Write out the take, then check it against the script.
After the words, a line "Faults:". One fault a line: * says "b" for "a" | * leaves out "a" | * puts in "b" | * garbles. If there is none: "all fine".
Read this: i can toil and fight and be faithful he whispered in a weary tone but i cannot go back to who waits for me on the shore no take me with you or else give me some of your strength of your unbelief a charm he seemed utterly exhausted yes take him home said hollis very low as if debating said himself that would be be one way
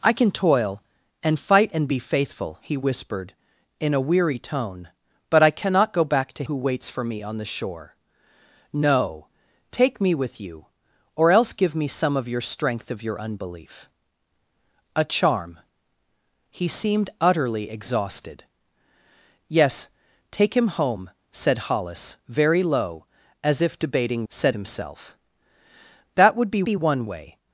i can toil and fight and be faithful he whispered in a weary tone but i cannot go back to who waits for me on the shore no take me with you or else give me some of your strength of your unbelief a charm he seemed utterly exhausted yes take him home said hollis very low as if debating said himself that would be be one way
Faults:
all fine